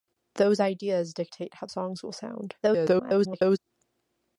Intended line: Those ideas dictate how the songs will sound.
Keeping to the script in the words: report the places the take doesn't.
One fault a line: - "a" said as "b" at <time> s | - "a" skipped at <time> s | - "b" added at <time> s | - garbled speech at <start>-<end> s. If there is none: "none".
- "the" skipped at 1.7 s
- garbled speech at 2.6-3.6 s